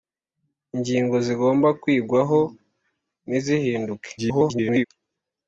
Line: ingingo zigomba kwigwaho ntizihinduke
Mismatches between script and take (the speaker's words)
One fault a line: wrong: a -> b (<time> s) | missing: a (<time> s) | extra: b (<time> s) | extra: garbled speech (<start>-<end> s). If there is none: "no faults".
extra: garbled speech (4.2-4.9 s)